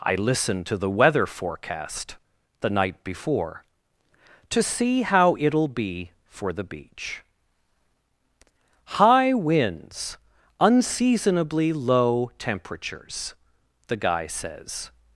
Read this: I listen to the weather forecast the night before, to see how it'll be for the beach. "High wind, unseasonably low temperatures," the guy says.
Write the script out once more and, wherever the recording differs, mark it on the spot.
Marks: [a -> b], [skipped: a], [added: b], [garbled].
I listen to the weather forecast the night before, to see how it'll be for the beach. "High [wind, -> winds] unseasonably low temperatures," the guy says.